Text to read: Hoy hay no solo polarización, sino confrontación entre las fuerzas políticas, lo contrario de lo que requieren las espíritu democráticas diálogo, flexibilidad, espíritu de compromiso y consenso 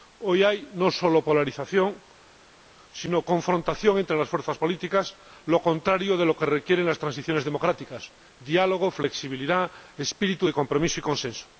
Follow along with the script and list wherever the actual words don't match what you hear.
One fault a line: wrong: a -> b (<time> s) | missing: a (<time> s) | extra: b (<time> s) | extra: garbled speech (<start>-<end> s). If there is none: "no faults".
wrong: espíritu -> transiciones (7.0 s)